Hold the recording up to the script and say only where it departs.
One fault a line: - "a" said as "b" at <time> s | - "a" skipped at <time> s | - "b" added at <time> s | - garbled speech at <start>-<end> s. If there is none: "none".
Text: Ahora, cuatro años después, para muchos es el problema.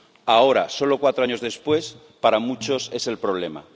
- "solo" added at 0.7 s